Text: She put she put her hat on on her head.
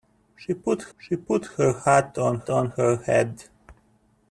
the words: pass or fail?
pass